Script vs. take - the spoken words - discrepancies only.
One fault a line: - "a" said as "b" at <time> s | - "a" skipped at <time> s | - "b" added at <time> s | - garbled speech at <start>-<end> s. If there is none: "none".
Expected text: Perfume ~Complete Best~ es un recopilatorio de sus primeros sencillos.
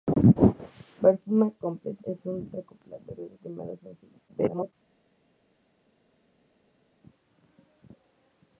- "Best" skipped at 2.0 s
- "sus" skipped at 3.4 s
- garbled speech at 4.3-4.7 s